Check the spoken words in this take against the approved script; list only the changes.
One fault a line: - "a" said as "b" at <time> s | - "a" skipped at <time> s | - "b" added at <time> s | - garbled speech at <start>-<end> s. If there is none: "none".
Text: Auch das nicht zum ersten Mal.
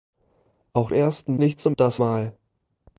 - "das" said as "ersten" at 0.9 s
- "ersten" said as "das" at 1.7 s